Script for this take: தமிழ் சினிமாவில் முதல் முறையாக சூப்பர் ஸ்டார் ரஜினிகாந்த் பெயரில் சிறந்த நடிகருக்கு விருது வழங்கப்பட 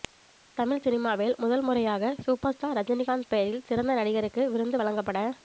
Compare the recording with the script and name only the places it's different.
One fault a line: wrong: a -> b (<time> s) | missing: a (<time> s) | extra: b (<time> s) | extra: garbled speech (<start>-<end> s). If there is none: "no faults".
no faults